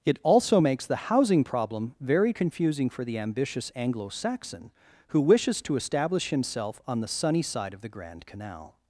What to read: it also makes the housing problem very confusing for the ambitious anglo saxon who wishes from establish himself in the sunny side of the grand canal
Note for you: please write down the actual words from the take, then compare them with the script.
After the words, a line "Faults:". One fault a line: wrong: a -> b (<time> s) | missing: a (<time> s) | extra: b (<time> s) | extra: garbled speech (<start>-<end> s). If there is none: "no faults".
it also makes the housing problem very confusing for the ambitious anglo saxon who wishes to establish himself on the sunny side of the grand canal
Faults:
wrong: from -> to (5.6 s)
wrong: in -> on (6.9 s)